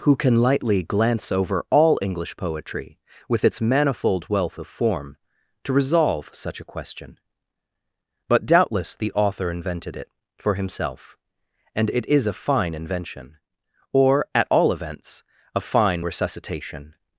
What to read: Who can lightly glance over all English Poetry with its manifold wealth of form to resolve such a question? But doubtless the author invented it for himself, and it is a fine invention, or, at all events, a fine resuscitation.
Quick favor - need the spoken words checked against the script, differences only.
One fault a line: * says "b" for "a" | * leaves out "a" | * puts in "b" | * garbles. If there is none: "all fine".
all fine